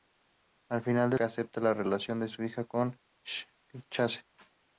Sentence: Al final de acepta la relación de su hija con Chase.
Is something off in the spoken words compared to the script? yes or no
no